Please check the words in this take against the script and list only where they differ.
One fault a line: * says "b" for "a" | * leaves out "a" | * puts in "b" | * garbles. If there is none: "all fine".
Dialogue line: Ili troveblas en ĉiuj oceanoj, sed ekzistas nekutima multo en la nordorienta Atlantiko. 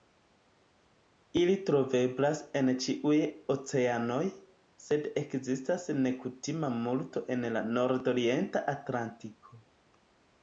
all fine